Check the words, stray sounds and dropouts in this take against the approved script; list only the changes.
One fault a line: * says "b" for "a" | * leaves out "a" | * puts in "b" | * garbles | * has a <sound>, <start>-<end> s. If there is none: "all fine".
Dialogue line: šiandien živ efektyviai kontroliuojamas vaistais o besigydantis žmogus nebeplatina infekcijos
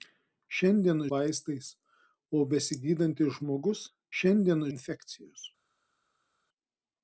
* leaves out "živ efektyviai kontroliuojamas"
* says "šiandien" for "nebeplatina"